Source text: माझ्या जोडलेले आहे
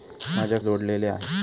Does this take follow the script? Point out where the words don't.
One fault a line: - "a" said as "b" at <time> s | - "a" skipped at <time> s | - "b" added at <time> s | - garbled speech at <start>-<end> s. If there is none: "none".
none